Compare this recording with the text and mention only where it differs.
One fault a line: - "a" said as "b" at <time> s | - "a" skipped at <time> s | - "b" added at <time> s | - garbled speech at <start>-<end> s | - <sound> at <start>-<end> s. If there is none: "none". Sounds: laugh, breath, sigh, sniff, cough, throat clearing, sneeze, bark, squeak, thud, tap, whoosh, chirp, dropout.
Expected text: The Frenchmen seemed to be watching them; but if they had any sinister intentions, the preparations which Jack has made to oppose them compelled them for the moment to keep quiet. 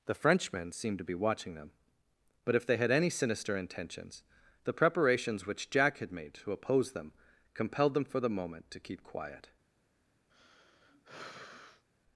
- "has" said as "had" at 6.0 s
- sigh at 10.3-11.8 s